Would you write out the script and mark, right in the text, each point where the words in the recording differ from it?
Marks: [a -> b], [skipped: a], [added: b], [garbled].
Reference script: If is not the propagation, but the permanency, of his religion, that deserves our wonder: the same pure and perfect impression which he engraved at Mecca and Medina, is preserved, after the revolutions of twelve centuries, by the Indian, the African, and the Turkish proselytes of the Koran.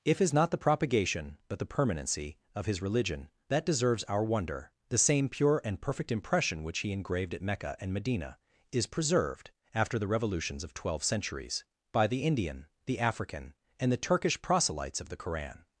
If is not the propagation, but the permanency, of his religion, that deserves our wonder: the same pure and perfect impression which he engraved at Mecca and Medina, is preserved, after the revolutions of twelve centuries, by the Indian, the African, and the Turkish proselytes of the Koran.